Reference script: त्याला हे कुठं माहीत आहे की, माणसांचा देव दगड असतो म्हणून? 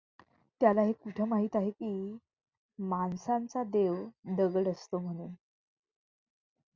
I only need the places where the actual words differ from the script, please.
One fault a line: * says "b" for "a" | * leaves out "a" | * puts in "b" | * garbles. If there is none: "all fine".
all fine